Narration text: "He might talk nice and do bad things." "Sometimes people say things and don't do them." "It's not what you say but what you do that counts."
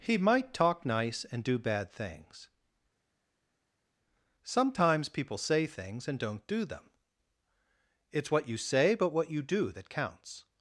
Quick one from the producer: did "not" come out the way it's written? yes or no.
no